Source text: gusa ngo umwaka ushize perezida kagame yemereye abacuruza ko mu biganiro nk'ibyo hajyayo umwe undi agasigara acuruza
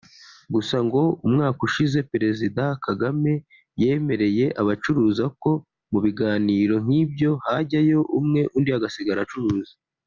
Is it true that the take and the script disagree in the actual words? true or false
false